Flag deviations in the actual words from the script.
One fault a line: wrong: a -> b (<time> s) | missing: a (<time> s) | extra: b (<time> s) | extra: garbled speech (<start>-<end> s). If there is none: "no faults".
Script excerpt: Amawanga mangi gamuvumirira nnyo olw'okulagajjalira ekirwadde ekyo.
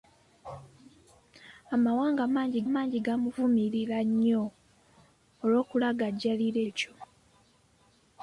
extra: mangi (2.7 s)
missing: ekirwadde (6.6 s)